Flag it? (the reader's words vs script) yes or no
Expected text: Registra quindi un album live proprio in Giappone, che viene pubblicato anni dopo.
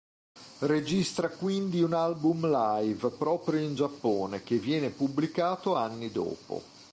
no